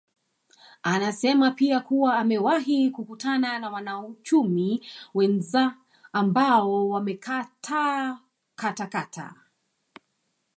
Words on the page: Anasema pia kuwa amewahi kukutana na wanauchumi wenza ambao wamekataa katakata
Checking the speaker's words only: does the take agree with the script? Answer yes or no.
yes